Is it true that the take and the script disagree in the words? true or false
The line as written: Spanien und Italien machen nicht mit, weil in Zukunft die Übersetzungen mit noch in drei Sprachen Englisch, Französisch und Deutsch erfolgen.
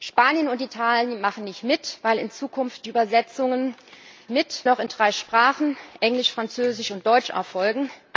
false